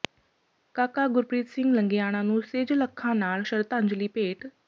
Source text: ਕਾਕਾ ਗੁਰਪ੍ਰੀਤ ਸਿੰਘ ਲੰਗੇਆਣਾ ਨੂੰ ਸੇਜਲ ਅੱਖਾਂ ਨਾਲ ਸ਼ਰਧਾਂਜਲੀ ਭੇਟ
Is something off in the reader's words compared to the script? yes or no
no